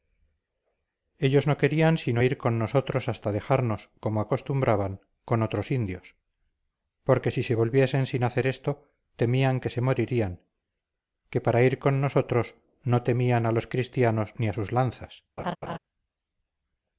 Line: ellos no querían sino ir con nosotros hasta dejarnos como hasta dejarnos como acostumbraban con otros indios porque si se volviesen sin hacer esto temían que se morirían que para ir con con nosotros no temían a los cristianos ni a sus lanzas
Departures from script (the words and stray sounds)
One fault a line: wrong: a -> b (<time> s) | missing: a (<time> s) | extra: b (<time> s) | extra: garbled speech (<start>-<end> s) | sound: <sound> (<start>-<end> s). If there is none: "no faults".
missing: hasta dejarnos como (4.2 s)
missing: con (12.0 s)
sound: laugh (15.4-15.8 s)